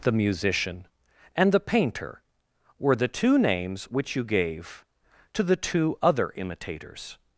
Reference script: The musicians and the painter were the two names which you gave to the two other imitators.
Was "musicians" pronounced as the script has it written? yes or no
no